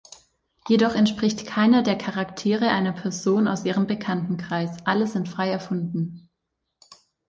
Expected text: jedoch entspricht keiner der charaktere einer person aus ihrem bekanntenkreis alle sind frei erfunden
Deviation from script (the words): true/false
false